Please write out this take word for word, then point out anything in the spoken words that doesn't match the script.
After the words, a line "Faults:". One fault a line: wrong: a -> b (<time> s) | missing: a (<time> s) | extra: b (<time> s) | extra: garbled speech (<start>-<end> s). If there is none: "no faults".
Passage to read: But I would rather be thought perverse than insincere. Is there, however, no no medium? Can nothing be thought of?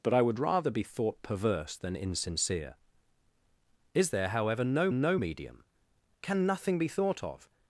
But I would rather be thought perverse than insincere. Is there, however, no no medium? Can nothing be thought of?
Faults:
no faults